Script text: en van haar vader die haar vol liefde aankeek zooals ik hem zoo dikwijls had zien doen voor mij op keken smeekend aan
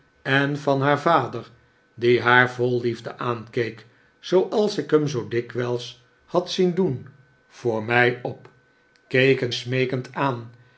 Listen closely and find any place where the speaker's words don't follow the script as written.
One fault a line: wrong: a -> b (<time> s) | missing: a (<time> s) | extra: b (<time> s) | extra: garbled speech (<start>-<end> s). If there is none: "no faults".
no faults